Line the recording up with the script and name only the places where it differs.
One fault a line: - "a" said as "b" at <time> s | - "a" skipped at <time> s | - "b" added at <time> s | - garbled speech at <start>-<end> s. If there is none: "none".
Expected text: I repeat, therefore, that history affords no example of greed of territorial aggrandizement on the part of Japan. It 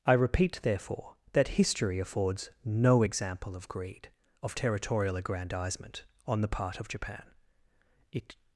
none